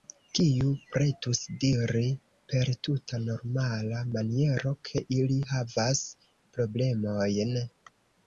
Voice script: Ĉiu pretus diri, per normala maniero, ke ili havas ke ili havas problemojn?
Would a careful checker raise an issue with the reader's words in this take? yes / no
yes